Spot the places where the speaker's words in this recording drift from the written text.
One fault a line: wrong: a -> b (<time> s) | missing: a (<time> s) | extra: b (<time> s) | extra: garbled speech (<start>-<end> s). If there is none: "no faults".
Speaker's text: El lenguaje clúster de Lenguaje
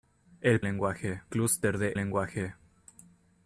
no faults